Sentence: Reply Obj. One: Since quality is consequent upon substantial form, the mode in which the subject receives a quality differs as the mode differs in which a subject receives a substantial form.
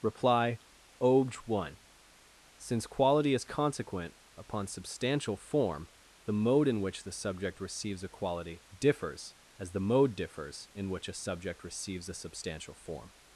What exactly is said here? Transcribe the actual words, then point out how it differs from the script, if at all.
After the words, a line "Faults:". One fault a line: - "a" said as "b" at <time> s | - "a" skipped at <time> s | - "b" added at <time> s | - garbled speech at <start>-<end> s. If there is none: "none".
Reply Obj. One: Since quality is consequent upon substantial form, the mode in which the subject receives a quality differs as the mode differs in which a subject receives a substantial form.
Faults:
none